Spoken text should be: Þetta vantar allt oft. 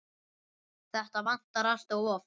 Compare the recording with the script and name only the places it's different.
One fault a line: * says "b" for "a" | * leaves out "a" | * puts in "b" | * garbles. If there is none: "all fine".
* puts in "of"